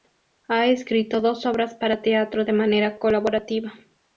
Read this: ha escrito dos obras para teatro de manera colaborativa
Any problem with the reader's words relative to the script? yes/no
no